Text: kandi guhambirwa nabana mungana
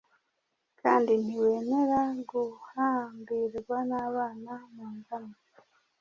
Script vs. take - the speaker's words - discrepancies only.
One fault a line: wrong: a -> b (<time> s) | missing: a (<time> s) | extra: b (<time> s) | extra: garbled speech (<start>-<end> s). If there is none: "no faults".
extra: ntiwemera (1.2 s)